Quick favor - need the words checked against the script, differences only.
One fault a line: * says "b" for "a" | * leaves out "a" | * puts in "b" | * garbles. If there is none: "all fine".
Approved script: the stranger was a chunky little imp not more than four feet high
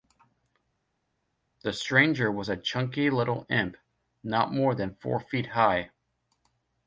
all fine